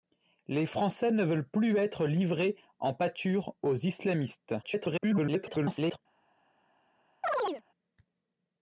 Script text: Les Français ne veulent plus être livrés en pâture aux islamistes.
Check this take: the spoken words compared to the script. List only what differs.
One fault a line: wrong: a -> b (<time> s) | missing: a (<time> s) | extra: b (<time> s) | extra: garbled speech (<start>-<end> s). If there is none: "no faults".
extra: garbled speech (4.6-6.0 s)